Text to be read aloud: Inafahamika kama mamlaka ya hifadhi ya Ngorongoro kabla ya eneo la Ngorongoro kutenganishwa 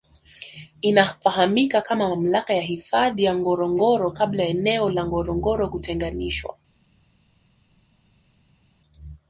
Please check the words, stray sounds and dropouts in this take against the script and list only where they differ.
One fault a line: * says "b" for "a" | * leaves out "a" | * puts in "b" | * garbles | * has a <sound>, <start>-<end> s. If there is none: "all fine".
all fine